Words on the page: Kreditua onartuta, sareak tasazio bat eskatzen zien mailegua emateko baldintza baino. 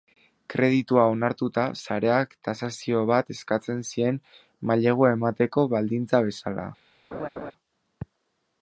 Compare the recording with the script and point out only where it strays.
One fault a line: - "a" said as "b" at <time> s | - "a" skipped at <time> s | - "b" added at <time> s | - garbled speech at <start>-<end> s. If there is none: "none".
- "baino" said as "bezala" at 6.3 s